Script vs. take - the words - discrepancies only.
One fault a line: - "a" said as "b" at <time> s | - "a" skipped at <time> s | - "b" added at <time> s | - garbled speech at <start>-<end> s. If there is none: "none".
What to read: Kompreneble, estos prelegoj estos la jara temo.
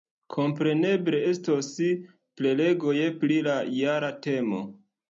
- "estos" said as "pri" at 3.3 s